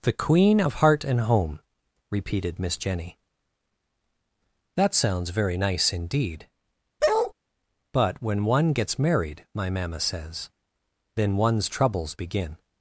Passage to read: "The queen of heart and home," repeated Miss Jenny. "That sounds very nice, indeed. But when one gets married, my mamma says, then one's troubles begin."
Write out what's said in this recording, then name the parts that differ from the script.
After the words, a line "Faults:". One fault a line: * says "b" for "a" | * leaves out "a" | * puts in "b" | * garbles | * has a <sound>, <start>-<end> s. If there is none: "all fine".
"The queen of heart and home," repeated Miss Jenny. "That sounds very nice, indeed. But when one gets married, my mamma says, then one's troubles begin."
Faults:
* has a bark, 7.0-7.3 s